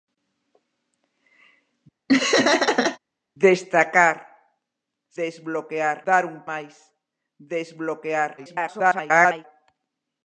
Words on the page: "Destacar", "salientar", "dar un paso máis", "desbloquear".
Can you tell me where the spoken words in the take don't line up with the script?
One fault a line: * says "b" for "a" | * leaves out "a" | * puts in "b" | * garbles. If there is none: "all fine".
* says "desbloquear" for "salientar"
* leaves out "paso"
* garbles